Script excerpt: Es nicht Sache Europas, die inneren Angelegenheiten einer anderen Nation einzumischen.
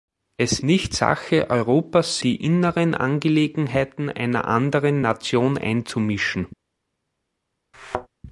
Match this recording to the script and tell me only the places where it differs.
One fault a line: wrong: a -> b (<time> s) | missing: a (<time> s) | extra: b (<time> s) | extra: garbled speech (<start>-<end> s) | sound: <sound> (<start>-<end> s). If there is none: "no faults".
sound: thud (7.7-8.1 s)